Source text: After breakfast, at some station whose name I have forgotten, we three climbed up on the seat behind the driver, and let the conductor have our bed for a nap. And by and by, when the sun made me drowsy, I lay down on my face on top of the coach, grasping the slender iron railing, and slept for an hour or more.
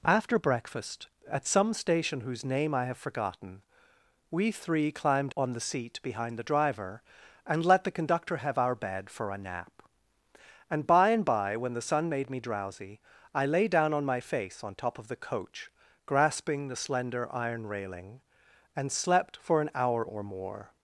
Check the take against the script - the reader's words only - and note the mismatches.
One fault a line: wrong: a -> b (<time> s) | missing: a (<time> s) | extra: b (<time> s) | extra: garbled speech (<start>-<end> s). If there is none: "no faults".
missing: up (5.3 s)